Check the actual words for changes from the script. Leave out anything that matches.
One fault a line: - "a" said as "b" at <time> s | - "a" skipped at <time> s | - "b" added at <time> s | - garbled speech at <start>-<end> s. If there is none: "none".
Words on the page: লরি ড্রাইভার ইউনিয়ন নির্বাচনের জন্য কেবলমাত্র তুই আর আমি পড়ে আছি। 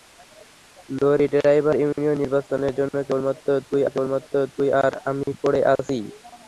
- "কেবলমাত্র তুই" added at 3.9 s